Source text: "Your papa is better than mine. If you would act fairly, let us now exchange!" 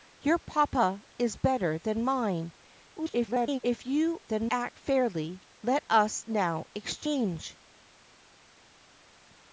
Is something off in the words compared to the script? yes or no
yes